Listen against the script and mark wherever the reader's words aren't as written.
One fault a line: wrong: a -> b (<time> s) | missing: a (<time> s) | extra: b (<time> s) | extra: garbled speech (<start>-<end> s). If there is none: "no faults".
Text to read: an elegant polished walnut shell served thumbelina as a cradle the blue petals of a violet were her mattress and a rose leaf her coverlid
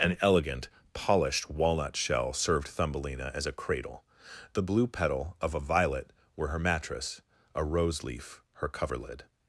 wrong: petals -> petal (4.9 s)
missing: and (7.2 s)